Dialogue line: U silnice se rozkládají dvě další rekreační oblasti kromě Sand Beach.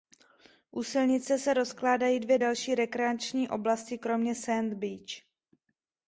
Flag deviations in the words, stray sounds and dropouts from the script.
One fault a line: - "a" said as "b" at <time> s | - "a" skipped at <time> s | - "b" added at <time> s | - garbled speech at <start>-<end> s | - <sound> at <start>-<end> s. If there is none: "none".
none